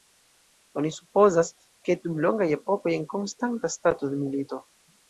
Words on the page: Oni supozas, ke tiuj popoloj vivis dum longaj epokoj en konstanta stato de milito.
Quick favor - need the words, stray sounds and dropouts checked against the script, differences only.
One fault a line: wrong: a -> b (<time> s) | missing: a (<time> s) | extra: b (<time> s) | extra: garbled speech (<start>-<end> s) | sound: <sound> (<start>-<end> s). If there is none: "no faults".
missing: tiuj popoloj vivis (1.9 s)